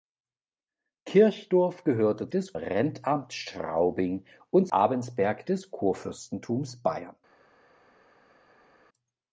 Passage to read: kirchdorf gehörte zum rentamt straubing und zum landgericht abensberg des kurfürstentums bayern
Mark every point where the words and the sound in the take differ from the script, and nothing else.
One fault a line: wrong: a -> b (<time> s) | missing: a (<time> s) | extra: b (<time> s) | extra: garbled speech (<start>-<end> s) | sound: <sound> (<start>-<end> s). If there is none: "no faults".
wrong: zum -> des (2.3 s)
missing: zum landgericht (4.7 s)